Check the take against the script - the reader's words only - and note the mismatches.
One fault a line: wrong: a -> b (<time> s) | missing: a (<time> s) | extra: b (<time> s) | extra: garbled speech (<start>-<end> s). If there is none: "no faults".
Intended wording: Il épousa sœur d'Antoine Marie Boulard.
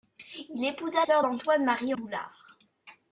no faults